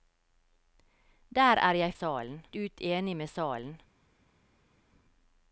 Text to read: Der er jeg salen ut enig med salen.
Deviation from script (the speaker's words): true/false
false